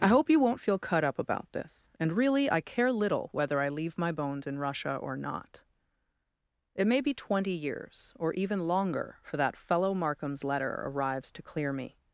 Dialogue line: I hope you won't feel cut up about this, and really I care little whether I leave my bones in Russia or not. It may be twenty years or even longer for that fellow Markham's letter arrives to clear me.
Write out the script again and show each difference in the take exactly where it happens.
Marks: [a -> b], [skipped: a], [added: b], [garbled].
I hope you won't feel cut up about this, and really I care little whether I leave my bones in Russia or not. It may be twenty years or even longer for that fellow Markham's letter arrives to clear me.